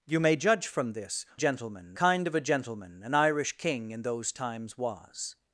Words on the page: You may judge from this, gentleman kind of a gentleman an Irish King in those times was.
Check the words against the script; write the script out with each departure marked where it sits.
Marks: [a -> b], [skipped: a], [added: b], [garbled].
You may judge from this, gentleman kind of a gentleman an Irish King in those times was.